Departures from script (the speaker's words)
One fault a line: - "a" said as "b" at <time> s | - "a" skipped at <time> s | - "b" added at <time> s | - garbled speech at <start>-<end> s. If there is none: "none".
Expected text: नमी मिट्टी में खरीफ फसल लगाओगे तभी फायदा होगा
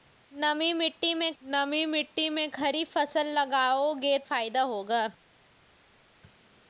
- "नमी मिट्टी में" added at 1.4 s
- "तभी" skipped at 4.2 s